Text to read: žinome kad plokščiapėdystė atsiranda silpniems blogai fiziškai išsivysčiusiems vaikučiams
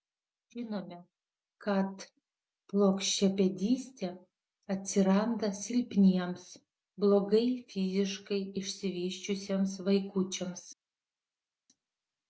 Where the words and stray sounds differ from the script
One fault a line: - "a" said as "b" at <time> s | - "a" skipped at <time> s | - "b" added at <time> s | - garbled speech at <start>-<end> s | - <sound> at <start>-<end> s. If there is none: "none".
none